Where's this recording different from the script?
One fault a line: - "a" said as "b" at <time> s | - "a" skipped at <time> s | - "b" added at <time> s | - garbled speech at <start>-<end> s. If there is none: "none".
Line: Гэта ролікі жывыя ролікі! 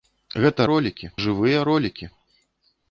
none